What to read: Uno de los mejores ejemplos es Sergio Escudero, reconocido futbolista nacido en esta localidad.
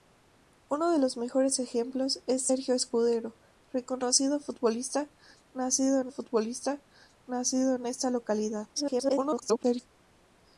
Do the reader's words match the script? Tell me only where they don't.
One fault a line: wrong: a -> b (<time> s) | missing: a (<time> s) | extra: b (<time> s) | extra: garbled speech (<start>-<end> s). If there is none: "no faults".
extra: futbolista nacido en (6.1 s)
extra: garbled speech (8.7-9.9 s)